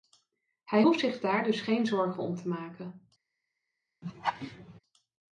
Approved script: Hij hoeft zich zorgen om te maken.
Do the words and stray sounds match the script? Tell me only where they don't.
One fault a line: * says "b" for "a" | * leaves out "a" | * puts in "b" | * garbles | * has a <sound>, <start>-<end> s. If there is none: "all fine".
* puts in "daar dus geen"
* has a laugh, 4.0-4.8 s